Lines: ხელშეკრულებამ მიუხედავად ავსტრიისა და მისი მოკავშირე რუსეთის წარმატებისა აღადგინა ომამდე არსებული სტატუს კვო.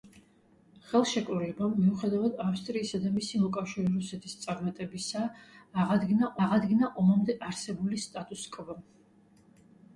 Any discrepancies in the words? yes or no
yes